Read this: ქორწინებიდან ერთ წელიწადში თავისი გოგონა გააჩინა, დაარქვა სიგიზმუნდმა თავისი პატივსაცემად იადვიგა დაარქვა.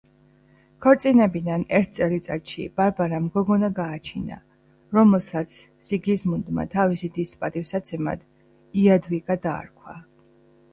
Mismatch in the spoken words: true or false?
true